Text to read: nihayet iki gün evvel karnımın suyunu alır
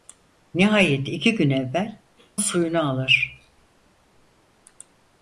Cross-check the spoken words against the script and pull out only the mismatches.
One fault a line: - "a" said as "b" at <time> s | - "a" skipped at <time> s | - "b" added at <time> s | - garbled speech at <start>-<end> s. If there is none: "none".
- "karnımın" skipped at 2.0 s